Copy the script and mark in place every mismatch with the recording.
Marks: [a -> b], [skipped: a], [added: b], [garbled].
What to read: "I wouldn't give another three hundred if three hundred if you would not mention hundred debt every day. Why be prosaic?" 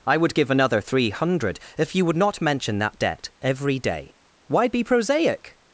"I [wouldn't -> would] give another three hundred if [skipped: three hundred if] you would not mention [hundred -> that] debt every day. Why be prosaic?"